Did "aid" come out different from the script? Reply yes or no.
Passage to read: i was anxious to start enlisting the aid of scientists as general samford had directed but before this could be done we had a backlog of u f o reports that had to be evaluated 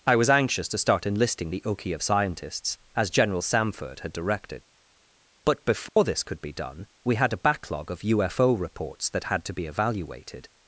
yes